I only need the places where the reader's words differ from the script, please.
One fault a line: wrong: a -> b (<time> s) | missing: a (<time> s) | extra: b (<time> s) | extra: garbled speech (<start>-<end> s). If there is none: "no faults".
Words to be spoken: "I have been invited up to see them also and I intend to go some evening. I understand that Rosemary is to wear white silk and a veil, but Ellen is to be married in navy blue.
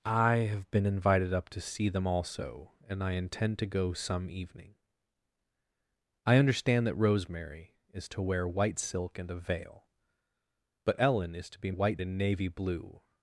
wrong: married -> white (11.7 s)